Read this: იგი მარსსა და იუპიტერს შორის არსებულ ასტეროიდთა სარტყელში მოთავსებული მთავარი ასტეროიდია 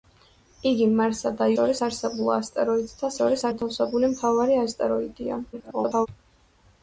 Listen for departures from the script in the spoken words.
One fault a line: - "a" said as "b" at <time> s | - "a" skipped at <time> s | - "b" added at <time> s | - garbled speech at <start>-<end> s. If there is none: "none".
- "იუპიტერს" skipped at 1.5 s
- "სარტყელში" said as "შორის" at 3.2 s
- garbled speech at 5.5-6.1 s